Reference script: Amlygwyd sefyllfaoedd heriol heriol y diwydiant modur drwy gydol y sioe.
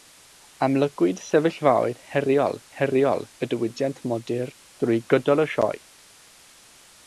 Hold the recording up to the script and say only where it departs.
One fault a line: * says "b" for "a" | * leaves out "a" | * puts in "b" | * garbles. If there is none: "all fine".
all fine